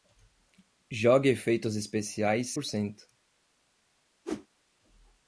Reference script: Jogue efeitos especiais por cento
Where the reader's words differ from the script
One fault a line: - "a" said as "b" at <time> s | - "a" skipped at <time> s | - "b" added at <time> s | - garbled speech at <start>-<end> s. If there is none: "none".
none